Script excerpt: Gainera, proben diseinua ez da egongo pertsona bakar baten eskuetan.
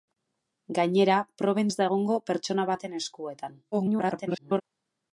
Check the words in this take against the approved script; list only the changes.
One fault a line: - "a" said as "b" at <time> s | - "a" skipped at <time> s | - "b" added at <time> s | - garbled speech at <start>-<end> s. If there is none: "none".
- "diseinua" skipped at 1.7 s
- "bakar" skipped at 2.7 s
- garbled speech at 3.7-4.6 s